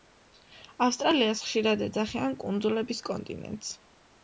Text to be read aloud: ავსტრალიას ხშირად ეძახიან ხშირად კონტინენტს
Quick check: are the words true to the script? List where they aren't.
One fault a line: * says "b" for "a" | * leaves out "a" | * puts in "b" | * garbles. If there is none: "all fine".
* says "კუნძულების" for "ხშირად"